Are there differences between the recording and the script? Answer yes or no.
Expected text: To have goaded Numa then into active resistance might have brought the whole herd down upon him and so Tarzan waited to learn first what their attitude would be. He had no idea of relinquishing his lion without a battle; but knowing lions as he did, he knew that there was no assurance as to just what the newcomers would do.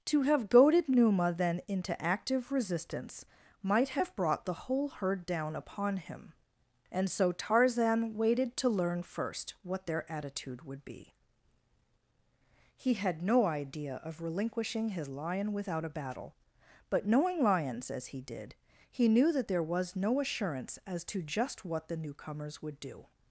no